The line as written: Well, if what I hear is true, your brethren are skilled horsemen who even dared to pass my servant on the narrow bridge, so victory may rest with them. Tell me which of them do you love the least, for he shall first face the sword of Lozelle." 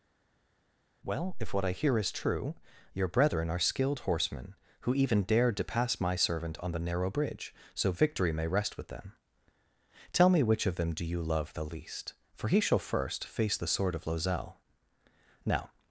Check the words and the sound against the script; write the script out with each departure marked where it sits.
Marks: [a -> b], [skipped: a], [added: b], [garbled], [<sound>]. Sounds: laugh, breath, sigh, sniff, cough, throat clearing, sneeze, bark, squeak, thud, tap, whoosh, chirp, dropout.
Well, if what I hear is true, your brethren are skilled horsemen who even dared to pass my servant on the narrow bridge, so victory may rest with them. Tell me which of them do you love the least, for he shall first face the sword of Lozelle." [added: Now]